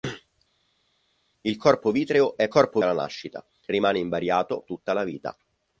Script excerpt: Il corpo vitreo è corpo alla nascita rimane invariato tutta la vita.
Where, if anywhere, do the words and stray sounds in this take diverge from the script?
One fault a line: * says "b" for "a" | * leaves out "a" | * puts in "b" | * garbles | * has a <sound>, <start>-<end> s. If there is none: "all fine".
all fine